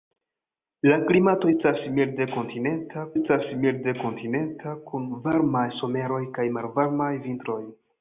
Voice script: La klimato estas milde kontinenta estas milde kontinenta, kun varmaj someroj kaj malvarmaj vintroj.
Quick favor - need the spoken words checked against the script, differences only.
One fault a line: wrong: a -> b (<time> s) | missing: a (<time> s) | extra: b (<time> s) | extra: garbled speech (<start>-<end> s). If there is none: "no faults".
no faults